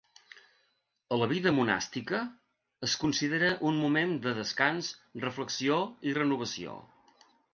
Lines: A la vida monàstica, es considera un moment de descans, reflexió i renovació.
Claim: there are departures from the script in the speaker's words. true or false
false